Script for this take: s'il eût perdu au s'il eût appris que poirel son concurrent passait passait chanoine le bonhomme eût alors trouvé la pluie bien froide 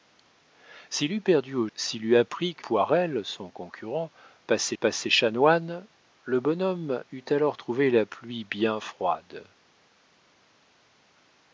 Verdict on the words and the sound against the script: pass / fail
pass